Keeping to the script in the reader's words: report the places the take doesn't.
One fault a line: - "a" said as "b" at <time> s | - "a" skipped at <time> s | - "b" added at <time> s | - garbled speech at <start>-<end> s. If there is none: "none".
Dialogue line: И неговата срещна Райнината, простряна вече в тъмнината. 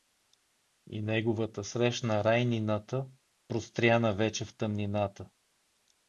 none